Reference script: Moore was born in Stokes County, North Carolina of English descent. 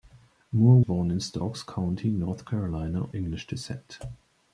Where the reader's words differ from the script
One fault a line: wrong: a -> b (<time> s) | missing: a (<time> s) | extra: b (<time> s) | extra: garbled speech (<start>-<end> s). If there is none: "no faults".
missing: was (0.8 s)
missing: of (3.1 s)